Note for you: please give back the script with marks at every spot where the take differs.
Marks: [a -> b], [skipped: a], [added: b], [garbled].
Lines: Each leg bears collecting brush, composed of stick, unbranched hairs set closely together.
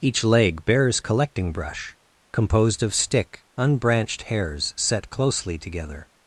Each leg bears collecting brush, composed of stick, unbranched hairs set closely together.